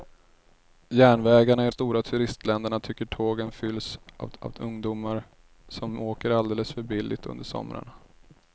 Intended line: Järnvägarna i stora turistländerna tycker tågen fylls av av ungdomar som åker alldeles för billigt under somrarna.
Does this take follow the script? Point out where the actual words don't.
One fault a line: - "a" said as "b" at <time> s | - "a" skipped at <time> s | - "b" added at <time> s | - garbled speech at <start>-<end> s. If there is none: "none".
none